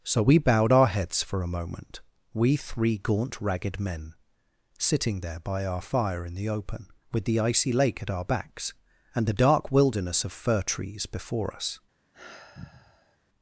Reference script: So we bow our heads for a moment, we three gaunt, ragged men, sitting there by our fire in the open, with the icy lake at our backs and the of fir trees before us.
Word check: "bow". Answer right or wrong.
wrong